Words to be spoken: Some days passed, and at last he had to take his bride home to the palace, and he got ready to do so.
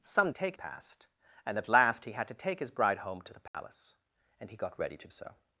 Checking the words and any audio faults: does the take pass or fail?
fail